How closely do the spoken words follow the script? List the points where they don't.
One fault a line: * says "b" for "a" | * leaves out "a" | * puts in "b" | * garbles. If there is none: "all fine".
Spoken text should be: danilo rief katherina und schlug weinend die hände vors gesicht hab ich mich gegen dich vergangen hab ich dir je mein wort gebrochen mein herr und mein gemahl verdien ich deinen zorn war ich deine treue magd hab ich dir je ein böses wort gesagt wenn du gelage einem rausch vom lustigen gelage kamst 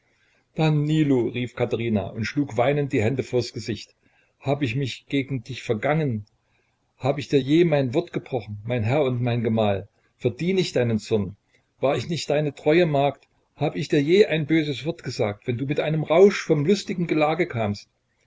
* puts in "nicht"
* says "mit" for "gelage"